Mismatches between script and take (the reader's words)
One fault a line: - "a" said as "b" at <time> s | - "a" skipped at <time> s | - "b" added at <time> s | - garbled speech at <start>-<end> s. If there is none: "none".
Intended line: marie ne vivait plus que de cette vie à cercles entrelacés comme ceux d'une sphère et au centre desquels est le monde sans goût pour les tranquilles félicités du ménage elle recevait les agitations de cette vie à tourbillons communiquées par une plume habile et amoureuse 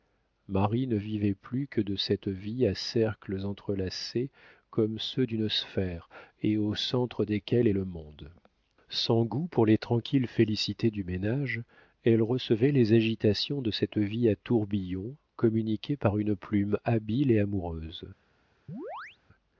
none